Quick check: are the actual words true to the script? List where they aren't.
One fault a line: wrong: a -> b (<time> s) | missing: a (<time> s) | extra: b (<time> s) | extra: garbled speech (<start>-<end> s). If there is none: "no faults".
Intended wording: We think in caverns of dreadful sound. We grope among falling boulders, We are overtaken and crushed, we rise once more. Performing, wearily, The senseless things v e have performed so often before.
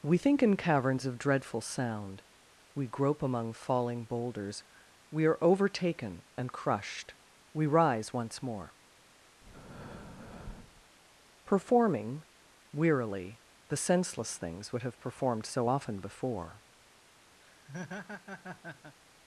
wrong: v e -> would (14.7 s)